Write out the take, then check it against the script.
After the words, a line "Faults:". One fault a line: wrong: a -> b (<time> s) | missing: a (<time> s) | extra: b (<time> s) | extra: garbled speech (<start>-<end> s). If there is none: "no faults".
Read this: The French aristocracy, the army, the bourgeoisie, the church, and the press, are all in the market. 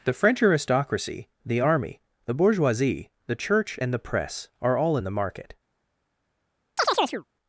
The French aristocracy, the army, the bourgeoisie, the church, and the press, are all in the market.
Faults:
no faults